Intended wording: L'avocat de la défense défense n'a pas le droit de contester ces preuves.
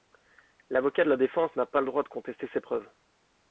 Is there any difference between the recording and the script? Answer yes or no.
yes